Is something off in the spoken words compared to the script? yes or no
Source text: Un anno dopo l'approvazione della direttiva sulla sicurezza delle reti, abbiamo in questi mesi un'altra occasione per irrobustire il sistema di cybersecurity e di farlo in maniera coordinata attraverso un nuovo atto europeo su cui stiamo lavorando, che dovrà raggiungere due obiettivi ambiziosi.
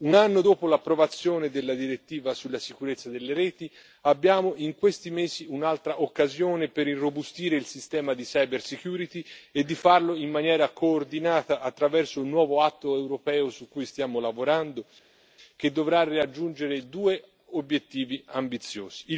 no